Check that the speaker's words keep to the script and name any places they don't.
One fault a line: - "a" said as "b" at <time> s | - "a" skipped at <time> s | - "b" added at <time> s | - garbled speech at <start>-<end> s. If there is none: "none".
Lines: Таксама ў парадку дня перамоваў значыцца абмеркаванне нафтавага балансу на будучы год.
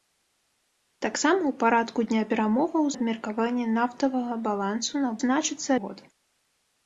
- "значыцца" skipped at 2.8 s
- "будучы" said as "значыцца" at 5.2 s